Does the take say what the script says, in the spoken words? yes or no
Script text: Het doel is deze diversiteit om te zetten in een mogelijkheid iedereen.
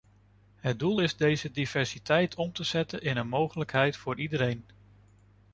no